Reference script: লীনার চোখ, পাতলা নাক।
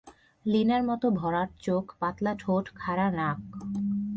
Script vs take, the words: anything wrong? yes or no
yes